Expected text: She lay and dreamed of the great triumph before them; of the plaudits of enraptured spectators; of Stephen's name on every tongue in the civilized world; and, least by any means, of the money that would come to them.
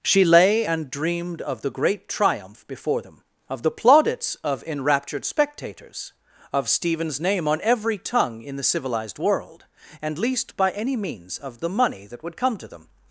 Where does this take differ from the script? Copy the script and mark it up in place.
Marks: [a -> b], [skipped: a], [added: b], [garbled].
She lay and dreamed of the great triumph before them; of the plaudits of enraptured spectators; of Stephen's name on every tongue in the civilized world; and, least by any means, of the money that would come to them.